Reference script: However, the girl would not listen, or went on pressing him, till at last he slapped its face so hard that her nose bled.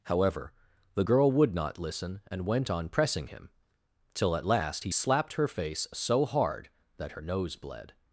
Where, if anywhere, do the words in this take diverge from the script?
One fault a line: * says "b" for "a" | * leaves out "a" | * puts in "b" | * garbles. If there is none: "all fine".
* says "and" for "or"
* says "her" for "its"